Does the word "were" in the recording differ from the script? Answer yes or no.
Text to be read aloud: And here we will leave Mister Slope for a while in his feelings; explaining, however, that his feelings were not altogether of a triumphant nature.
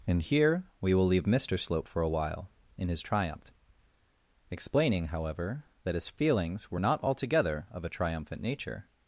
no